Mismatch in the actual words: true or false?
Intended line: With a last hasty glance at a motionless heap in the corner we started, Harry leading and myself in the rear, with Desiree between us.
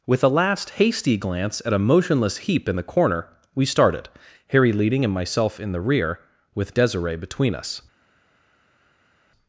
false